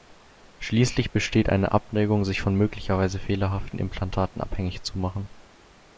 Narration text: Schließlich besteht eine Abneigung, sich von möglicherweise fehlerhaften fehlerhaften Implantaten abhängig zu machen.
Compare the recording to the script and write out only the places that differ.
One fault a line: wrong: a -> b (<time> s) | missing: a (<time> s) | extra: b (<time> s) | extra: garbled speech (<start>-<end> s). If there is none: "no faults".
missing: fehlerhaften (3.8 s)